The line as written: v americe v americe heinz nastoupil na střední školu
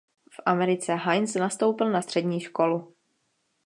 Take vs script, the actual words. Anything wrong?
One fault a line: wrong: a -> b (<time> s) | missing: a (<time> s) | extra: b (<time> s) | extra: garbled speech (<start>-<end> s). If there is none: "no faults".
missing: v americe (0.9 s)